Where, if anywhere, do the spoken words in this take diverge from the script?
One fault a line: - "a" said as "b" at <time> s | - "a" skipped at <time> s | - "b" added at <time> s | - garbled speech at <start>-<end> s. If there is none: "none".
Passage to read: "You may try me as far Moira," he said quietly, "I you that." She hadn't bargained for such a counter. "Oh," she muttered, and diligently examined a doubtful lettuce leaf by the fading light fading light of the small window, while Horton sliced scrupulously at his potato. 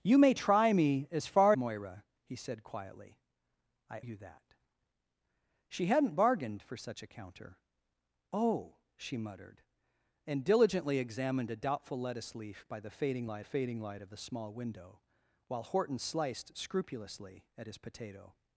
none